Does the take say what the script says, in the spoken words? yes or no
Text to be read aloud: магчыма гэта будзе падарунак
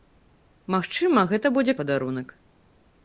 yes